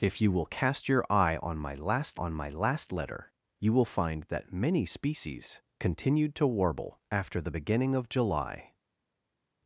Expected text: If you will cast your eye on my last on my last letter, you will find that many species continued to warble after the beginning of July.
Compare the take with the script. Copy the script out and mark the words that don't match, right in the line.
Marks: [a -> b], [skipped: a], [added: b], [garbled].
If you will cast your eye on my last on my last letter, you will find that many species continued to warble after the beginning of July.